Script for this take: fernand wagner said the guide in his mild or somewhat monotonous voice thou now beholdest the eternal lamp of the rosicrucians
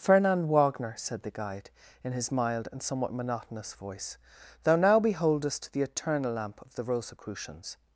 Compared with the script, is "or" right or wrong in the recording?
wrong